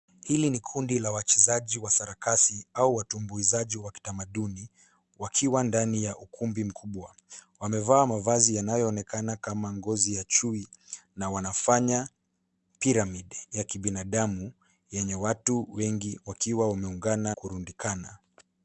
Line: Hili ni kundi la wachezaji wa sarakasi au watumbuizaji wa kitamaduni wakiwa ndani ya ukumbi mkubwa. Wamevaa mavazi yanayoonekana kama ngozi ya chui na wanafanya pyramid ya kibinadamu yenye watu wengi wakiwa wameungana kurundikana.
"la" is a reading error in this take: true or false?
false